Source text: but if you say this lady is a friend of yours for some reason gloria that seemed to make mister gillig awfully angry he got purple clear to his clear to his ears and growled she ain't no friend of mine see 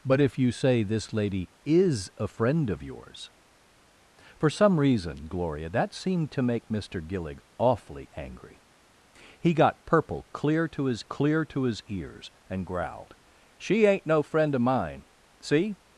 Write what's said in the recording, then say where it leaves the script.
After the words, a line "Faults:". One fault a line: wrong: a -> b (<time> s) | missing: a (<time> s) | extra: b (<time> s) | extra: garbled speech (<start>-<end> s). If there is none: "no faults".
but if you say this lady is a friend of yours for some reason gloria that seemed to make mister gillig awfully angry he got purple clear to his clear to his ears and growled she ain't no friend of mine see
Faults:
no faults